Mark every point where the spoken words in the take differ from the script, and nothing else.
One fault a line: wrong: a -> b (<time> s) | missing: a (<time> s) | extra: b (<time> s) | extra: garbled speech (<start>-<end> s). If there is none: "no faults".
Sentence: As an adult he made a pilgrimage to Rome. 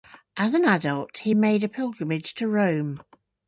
no faults